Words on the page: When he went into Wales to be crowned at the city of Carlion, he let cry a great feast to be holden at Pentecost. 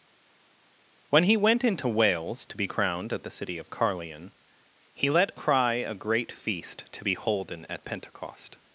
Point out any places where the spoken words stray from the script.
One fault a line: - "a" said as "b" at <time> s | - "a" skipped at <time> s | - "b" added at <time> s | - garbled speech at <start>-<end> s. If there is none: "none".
none